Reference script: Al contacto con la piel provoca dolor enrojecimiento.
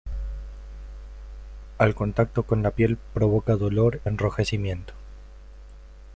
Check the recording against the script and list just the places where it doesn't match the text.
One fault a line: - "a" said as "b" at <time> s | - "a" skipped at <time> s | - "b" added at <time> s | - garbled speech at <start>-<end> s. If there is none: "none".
none